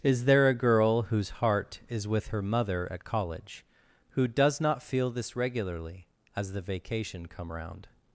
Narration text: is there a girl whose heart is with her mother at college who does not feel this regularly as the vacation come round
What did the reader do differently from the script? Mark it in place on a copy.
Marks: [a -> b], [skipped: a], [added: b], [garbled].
is there a girl whose heart is with her mother at college who does not feel this regularly as the vacation come round